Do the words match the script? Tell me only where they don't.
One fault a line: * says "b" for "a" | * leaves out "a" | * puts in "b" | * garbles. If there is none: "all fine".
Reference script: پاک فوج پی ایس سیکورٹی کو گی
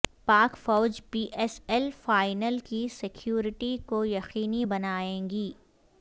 * puts in "ایل فائنل کی"
* puts in "یقینی بنائے"